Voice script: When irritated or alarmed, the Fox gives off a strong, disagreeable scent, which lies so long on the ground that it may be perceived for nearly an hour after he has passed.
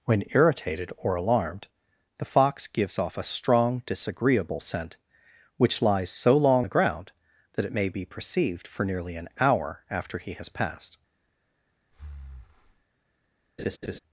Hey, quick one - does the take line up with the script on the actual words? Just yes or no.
no